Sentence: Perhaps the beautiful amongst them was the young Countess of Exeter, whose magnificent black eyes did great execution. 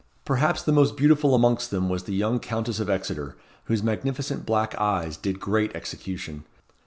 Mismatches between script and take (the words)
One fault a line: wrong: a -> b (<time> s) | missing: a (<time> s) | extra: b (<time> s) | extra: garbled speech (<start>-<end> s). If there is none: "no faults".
extra: most (0.7 s)